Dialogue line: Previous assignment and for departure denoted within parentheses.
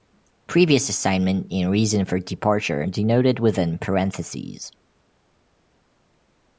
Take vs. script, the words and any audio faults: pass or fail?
fail